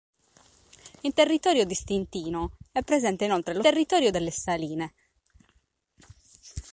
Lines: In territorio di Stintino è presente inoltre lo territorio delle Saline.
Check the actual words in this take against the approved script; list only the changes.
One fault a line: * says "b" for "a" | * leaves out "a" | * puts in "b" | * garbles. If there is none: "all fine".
all fine